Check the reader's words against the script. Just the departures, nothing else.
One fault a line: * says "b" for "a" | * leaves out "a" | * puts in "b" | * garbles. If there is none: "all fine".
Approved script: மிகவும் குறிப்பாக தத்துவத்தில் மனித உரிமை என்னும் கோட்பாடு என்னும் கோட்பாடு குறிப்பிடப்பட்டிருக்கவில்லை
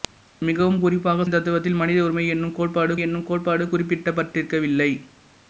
all fine